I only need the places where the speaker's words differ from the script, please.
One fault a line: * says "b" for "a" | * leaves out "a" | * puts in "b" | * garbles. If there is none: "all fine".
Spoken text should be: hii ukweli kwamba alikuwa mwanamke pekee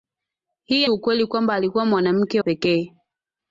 all fine